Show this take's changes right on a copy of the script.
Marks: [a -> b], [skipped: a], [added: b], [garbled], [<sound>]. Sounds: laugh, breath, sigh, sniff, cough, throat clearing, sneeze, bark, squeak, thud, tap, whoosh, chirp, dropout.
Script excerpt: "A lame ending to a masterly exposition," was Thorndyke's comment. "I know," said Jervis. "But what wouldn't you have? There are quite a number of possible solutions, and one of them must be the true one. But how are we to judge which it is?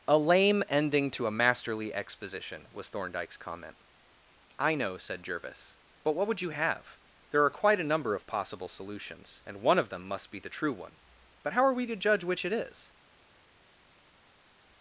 "A lame ending to a masterly exposition," was Thorndyke's comment. "I know," said Jervis. "But what [wouldn't -> would] you have? There are quite a number of possible solutions, and one of them must be the true one. But how are we to judge which it is?